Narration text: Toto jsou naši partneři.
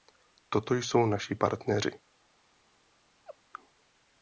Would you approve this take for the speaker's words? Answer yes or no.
yes